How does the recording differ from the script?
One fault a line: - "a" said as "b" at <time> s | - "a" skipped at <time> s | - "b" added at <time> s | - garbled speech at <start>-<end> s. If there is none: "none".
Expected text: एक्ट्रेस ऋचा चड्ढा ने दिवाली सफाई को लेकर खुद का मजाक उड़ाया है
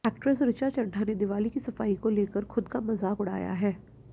- "की" added at 1.5 s